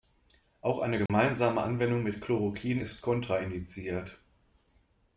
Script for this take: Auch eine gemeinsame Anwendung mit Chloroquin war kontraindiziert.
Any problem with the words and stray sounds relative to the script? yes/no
yes